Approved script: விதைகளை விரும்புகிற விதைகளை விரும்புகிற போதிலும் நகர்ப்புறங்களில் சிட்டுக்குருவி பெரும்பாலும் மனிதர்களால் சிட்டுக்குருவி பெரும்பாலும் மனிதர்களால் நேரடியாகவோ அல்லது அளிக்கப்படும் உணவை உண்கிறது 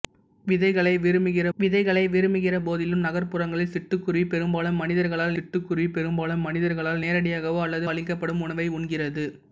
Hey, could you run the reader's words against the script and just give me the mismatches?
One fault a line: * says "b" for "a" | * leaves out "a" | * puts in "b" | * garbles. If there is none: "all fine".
all fine